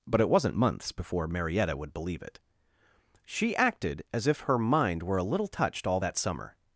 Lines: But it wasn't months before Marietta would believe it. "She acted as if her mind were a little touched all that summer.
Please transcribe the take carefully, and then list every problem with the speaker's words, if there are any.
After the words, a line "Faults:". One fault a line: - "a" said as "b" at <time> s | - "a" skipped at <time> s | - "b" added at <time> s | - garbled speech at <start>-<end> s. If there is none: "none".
But it wasn't months before Marietta would believe it. "She acted as if her mind were a little touched all that summer.
Faults:
none